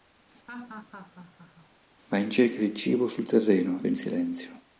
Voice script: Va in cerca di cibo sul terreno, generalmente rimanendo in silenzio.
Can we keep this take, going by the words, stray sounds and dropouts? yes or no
no